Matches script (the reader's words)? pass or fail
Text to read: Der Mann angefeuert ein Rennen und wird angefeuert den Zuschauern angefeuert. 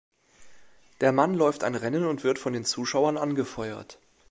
fail